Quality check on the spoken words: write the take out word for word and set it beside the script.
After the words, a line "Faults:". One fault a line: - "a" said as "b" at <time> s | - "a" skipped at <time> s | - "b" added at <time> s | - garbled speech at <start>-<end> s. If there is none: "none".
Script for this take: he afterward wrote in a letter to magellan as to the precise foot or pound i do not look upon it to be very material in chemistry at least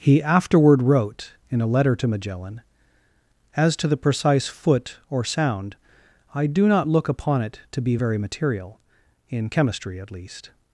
he afterward wrote in a letter to magellan as to the precise foot or sound i do not look upon it to be very material in chemistry at least
Faults:
- "pound" said as "sound" at 5.2 s